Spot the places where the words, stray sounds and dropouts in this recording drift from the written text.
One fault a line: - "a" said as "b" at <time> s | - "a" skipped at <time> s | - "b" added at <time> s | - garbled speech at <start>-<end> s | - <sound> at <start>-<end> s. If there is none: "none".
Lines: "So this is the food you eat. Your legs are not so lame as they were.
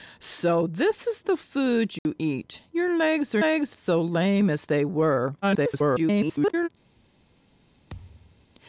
- dropout at 2.0-2.1 s
- "not" said as "legs" at 3.4 s
- garbled speech at 5.4-6.7 s
- thud at 7.9-8.5 s